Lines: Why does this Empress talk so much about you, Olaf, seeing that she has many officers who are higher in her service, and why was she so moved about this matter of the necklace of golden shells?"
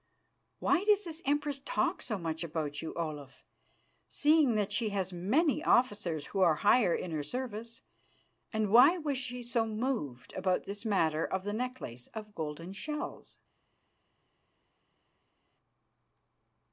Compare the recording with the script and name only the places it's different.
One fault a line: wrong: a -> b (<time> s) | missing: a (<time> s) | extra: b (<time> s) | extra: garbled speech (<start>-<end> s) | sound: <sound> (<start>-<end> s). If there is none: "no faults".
no faults